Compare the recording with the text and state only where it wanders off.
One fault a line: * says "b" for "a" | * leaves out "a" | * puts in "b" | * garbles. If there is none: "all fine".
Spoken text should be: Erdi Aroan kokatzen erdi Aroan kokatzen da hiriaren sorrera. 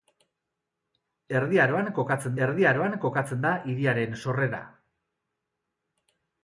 all fine